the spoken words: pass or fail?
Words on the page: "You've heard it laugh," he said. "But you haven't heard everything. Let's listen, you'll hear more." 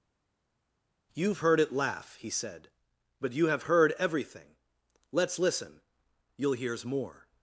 fail